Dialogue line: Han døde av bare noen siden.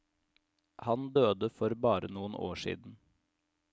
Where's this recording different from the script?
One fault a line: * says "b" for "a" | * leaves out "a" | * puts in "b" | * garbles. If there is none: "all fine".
* says "for" for "av"
* puts in "år"